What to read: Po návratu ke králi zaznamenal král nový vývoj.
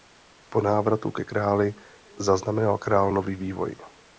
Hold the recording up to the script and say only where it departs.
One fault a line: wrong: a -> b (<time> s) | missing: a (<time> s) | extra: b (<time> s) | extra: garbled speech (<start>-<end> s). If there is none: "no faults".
no faults